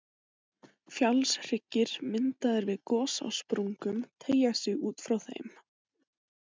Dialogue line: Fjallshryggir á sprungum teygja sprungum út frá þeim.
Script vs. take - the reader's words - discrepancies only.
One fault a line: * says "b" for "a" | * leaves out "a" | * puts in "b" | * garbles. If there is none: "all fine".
* puts in "myndaðir við gos"
* says "sig" for "sprungum"